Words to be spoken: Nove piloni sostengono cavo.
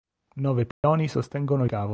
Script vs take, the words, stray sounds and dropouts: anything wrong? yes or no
yes